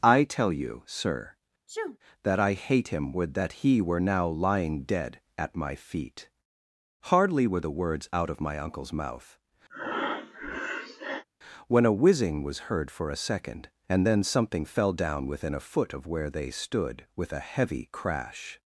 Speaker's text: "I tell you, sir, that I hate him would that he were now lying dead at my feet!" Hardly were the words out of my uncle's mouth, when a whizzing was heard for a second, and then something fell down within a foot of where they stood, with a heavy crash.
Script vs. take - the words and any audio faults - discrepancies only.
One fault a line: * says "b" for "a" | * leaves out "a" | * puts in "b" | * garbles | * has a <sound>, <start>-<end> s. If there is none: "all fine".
* has a sneeze, 1.7-2.0 s
* has a breath, 9.7-11.2 s